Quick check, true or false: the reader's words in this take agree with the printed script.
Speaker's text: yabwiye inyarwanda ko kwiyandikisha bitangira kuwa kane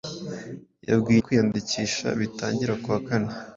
false